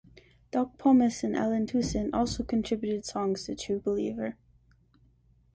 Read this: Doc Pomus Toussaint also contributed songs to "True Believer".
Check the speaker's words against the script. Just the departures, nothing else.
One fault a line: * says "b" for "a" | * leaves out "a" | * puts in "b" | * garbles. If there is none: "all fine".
* puts in "and Allen"